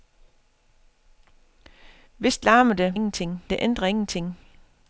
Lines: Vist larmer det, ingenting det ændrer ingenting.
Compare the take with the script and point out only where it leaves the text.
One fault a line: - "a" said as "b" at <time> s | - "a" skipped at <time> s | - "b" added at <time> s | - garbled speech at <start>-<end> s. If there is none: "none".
none